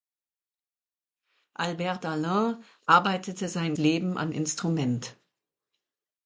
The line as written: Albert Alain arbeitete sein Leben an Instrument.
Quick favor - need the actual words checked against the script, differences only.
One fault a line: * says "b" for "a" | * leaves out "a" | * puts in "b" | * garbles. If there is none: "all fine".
all fine